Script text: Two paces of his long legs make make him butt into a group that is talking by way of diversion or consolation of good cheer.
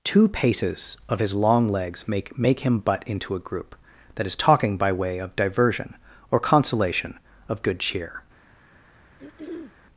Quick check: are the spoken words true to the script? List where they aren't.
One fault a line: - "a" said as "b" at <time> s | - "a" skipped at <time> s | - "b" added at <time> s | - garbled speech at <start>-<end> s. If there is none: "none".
none